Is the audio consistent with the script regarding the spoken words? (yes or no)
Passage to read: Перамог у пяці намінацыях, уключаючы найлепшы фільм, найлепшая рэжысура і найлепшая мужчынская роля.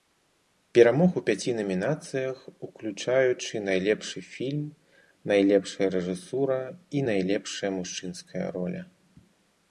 yes